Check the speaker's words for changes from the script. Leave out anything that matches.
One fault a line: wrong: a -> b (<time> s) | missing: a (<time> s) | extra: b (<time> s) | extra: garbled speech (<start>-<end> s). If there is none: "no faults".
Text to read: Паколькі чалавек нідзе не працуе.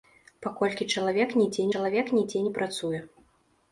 extra: чалавек нідзе (1.7 s)